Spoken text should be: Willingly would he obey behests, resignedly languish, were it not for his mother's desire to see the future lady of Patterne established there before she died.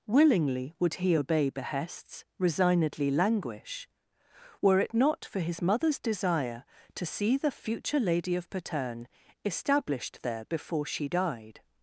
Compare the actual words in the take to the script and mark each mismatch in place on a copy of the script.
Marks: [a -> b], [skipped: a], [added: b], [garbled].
Willingly would he obey behests, resignedly languish, were it not for his mother's desire to see the future lady of Patterne established there before she died.